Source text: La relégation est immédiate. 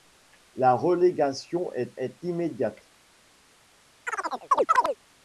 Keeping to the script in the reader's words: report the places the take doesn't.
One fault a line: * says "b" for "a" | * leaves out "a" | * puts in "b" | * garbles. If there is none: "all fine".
* puts in "est"